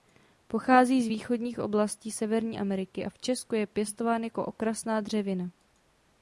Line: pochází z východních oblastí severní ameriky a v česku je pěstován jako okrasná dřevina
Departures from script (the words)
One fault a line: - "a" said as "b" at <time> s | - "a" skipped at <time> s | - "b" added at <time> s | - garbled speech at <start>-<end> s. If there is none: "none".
none